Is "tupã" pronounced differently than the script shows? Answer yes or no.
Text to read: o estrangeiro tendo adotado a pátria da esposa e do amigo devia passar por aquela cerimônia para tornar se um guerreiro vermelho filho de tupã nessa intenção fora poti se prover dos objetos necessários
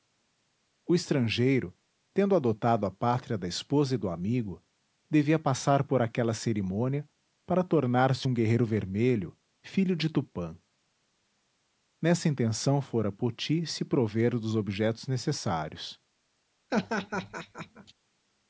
no